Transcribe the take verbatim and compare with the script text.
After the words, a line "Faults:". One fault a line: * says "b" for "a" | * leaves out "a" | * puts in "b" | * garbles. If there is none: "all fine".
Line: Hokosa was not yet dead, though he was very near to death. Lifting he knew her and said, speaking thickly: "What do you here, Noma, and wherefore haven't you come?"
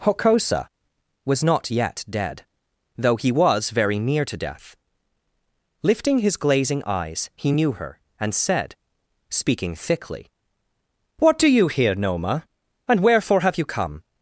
Hokosa was not yet dead, though he was very near to death. Lifting his glazing eyes, he knew her and said, speaking thickly: "What do you here, Noma, and wherefore have you come?"
Faults:
* puts in "his glazing eyes"
* says "have" for "haven't"